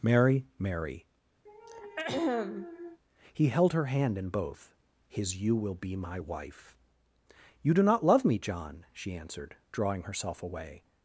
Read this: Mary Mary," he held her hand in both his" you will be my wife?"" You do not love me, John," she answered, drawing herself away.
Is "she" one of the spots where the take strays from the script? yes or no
no